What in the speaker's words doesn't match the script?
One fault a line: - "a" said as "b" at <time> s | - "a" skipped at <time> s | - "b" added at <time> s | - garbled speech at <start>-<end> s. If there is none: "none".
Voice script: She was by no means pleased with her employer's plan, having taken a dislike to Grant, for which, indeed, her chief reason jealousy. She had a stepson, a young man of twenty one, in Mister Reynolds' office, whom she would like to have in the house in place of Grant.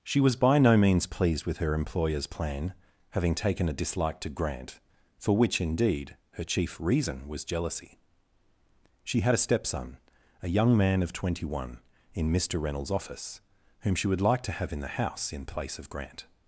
- "was" added at 7.3 s